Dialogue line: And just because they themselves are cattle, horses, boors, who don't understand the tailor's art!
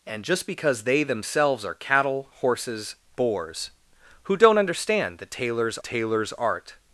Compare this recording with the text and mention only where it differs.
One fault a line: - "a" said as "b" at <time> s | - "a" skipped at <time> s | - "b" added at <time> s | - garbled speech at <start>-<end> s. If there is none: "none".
- "tailor's" added at 5.8 s